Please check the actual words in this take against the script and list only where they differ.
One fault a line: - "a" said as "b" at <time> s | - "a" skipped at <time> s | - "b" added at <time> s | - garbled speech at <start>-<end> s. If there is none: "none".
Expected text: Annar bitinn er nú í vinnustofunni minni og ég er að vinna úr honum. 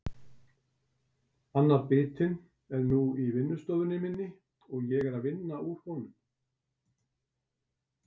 none